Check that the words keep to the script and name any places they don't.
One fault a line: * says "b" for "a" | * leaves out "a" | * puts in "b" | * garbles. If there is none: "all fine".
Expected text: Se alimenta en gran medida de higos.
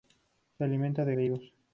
* leaves out "gran medida"